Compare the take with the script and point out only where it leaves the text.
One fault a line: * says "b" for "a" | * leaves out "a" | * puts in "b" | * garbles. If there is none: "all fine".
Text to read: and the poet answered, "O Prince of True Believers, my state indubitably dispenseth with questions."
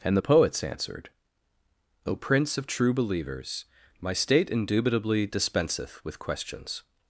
* says "poets" for "poet"